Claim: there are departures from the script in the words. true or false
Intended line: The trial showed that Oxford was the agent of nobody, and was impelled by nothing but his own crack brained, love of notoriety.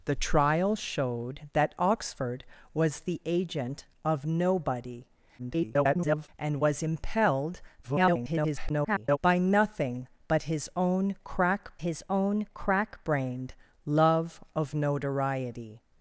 true